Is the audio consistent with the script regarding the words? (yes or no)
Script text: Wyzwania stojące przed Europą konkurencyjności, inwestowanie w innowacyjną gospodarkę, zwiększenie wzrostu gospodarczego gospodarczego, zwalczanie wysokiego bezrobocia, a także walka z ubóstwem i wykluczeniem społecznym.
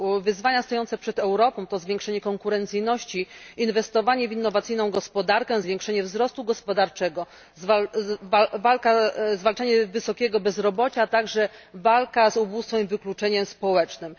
no